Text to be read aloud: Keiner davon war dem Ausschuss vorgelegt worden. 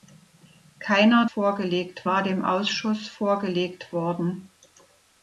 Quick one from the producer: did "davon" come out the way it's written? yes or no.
no